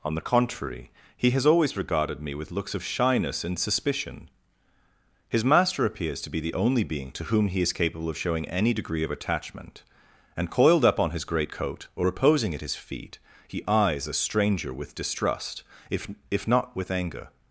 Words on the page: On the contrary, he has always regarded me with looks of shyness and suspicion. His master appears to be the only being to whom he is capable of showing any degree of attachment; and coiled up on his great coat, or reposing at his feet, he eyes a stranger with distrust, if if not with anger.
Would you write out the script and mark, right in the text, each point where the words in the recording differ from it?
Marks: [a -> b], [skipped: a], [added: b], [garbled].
On the contrary, he has always regarded me with looks of shyness and suspicion. His master appears to be the only being to whom he is capable of showing any degree of attachment; and coiled up on his great coat, or reposing at his feet, he eyes a stranger with distrust, if if not with anger.